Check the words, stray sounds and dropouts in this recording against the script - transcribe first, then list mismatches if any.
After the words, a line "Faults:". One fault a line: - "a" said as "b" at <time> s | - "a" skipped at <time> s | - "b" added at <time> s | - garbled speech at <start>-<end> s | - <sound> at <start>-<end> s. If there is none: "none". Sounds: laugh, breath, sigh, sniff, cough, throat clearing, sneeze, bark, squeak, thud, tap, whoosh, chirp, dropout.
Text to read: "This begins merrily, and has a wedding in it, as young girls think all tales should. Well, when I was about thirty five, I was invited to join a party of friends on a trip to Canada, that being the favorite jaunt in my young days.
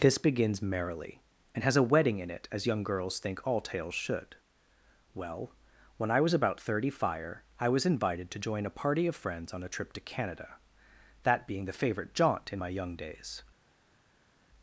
"This begins merrily, and has a wedding in it, as young girls think all tales should. Well, when I was about thirty fire, I was invited to join a party of friends on a trip to Canada, that being the favorite jaunt in my young days.
Faults:
- "five" said as "fire" at 6.9 s